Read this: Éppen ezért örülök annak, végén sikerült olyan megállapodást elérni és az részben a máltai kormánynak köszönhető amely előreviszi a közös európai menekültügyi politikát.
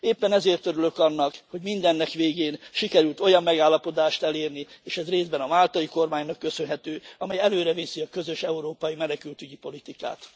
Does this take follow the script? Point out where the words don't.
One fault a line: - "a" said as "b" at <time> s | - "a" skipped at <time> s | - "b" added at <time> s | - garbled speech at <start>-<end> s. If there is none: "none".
- "hogy mindennek" added at 1.5 s
- "az" said as "ez" at 5.0 s